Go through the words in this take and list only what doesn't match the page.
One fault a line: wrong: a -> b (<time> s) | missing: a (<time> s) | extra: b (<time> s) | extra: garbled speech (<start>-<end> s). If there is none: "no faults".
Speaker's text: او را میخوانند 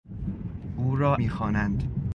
no faults